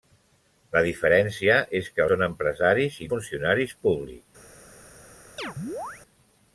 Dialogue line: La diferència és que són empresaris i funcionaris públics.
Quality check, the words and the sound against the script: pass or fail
fail